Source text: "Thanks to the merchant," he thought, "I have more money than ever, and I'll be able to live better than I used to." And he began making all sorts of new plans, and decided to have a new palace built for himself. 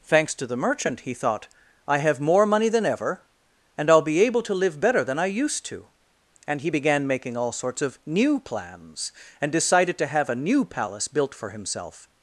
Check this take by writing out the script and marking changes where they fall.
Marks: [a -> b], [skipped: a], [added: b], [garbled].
"Thanks to the merchant," he thought, "I have more money than ever, and I'll be able to live better than I used to." And he began making all sorts of new plans, and decided to have a new palace built for himself.